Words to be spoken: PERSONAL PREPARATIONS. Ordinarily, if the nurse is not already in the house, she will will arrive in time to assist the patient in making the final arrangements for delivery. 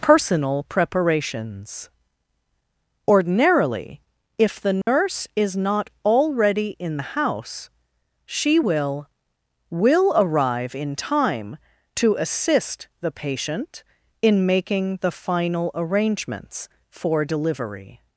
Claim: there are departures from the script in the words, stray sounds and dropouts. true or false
true